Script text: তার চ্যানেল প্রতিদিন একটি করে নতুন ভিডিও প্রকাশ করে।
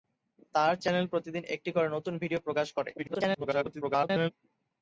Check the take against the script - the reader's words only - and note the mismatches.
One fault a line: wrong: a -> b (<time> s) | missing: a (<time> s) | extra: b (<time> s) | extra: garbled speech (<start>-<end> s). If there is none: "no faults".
extra: garbled speech (3.0-4.3 s)